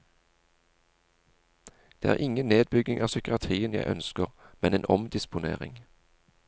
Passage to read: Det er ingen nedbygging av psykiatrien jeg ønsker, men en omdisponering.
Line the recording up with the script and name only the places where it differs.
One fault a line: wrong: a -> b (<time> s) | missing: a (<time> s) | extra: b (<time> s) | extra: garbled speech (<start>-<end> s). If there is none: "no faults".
no faults